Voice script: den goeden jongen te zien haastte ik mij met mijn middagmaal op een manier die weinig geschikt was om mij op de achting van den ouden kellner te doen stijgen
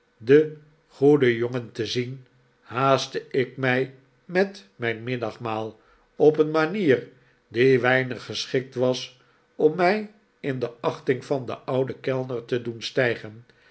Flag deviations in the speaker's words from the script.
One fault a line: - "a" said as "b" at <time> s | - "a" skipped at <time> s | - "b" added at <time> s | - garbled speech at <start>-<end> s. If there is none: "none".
- "op" said as "in" at 10.4 s